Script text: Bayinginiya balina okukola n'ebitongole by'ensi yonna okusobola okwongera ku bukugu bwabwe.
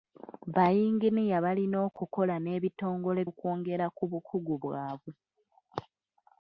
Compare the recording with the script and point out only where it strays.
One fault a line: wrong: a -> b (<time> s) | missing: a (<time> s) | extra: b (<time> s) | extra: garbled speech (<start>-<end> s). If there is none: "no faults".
missing: by'ensi yonna okusobola (3.2 s)